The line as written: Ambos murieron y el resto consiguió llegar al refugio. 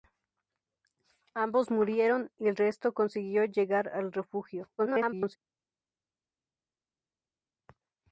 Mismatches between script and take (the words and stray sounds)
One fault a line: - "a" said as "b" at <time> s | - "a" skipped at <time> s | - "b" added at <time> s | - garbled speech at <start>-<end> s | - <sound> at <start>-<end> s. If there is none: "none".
- garbled speech at 4.8-5.4 s